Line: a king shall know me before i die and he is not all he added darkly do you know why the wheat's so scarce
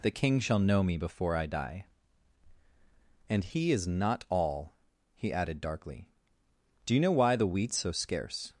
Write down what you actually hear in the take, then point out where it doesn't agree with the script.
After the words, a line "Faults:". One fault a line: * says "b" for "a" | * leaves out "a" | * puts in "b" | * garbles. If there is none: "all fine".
the king shall know me before i die and he is not all he added darkly do you know why the wheat's so scarce
Faults:
* says "the" for "a"